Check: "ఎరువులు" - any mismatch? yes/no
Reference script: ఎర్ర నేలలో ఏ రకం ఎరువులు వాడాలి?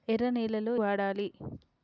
yes